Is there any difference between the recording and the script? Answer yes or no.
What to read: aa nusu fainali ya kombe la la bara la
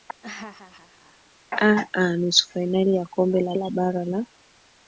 no